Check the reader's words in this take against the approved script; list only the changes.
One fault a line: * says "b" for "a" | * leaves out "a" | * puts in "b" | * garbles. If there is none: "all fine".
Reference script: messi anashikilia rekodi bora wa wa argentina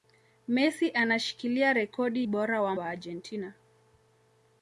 all fine